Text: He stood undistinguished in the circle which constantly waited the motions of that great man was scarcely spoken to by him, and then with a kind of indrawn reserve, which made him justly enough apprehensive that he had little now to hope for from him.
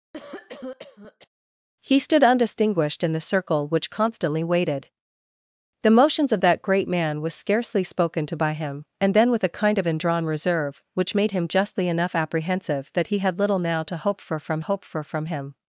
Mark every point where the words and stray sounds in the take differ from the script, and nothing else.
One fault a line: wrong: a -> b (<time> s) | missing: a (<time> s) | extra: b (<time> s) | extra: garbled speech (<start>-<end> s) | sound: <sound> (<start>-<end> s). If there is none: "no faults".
sound: cough (0.1-1.3 s)
extra: hope for from (14.6 s)